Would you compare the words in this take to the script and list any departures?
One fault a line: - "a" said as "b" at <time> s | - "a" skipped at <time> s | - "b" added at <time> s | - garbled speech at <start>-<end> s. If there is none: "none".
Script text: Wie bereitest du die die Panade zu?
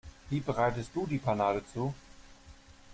- "die" skipped at 1.2 s